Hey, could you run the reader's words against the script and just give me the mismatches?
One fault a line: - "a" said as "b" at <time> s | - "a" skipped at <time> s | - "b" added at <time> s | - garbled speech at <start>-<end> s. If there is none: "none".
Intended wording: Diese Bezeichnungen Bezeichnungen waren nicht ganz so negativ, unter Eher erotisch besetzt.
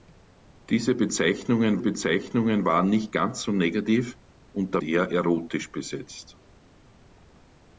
none